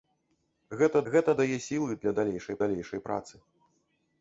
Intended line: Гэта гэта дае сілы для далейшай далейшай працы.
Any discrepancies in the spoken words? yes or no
no